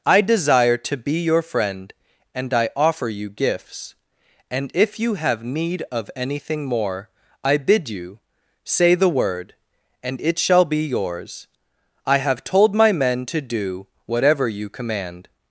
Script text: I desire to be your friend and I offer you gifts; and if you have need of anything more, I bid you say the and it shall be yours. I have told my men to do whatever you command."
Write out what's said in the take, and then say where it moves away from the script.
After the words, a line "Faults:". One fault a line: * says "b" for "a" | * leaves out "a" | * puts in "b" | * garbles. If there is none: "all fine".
I desire to be your friend and I offer you gifts; and if you have need of anything more, I bid you say the word, and it shall be yours. I have told my men to do whatever you command."
Faults:
* puts in "word"